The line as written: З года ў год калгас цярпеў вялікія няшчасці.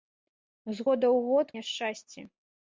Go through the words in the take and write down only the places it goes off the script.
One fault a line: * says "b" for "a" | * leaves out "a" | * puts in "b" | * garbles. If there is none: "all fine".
* leaves out "калгас цярпеў вялікія"